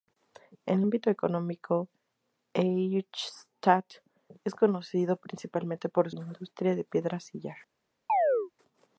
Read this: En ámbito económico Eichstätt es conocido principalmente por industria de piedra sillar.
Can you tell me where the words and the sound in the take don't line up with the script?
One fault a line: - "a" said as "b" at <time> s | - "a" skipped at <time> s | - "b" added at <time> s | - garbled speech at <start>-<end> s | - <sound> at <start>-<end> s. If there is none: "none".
- chirp at 8.1-8.5 s